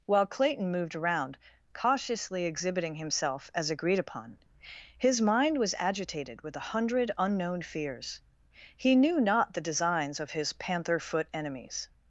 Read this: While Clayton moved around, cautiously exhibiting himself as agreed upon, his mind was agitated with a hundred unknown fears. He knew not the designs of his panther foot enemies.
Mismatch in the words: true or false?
false